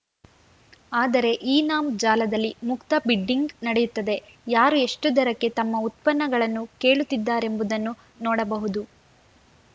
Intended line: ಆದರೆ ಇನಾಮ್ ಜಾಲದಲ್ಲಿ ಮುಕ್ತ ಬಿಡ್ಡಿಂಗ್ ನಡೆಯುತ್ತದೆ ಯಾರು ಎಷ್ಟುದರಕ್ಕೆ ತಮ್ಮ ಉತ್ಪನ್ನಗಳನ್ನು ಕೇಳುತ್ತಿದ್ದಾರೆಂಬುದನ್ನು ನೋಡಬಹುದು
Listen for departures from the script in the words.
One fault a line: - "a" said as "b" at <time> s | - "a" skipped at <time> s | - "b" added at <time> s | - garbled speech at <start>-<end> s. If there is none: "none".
none